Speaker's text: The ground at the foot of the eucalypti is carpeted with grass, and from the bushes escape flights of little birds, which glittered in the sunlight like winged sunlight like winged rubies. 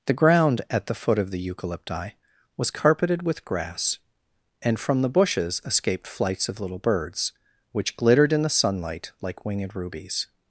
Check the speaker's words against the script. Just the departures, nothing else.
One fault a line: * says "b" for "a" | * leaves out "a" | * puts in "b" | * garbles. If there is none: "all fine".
* says "was" for "is"
* says "escaped" for "escape"
* leaves out "sunlight like winged"